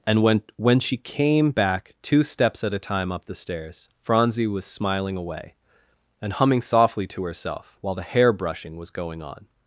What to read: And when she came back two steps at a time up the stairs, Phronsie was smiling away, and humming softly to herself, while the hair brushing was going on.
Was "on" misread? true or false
false